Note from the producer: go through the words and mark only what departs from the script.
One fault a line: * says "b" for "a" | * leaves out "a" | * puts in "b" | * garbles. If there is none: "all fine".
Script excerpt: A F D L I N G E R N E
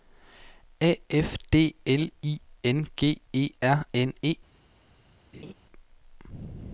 all fine